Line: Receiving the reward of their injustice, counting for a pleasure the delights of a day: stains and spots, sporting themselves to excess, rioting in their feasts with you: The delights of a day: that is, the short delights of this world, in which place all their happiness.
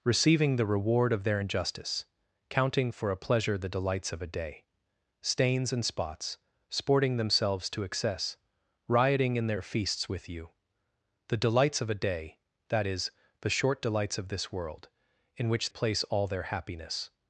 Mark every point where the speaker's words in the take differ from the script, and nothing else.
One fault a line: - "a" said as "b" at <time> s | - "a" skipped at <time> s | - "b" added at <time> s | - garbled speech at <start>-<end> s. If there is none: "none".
none